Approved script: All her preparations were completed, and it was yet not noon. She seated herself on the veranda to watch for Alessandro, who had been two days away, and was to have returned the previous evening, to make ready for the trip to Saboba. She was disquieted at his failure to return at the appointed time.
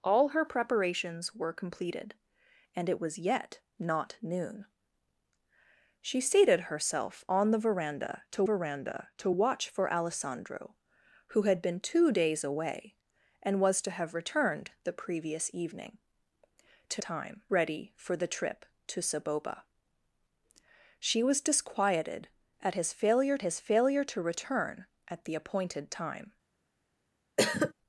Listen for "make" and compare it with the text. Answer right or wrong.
wrong